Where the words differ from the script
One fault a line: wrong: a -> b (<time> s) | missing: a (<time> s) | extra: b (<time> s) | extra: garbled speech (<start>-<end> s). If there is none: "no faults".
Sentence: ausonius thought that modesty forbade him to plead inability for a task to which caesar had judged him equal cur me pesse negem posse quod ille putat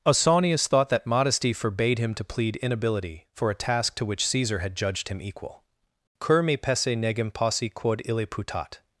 no faults